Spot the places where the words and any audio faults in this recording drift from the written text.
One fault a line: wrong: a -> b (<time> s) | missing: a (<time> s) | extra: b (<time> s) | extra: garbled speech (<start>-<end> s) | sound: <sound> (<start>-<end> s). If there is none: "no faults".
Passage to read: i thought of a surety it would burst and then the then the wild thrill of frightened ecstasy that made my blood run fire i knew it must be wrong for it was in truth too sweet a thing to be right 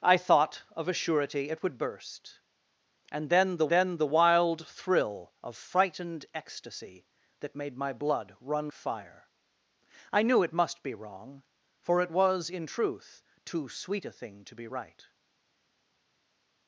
no faults